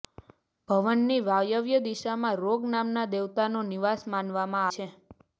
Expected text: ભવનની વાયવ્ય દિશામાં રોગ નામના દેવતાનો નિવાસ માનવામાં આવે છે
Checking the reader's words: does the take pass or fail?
fail